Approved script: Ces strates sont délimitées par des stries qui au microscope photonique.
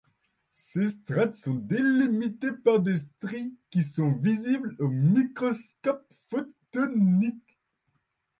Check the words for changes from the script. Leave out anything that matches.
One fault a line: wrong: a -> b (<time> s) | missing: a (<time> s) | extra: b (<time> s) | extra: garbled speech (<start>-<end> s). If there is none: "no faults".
extra: sont visibles (3.8 s)